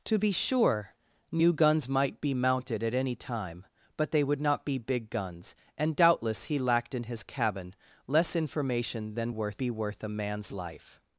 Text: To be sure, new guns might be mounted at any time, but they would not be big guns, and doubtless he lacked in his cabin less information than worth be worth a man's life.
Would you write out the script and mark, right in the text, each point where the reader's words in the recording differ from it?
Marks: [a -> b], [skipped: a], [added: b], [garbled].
To be sure, new guns might be mounted at any time, but they would not be big guns, and doubtless he lacked in his cabin less information than worth be worth a man's life.